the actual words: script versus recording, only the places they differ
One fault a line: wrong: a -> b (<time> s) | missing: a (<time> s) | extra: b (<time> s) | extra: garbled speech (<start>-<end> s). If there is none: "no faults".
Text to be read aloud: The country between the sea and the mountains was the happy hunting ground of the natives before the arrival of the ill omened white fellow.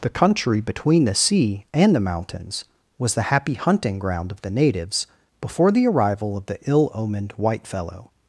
no faults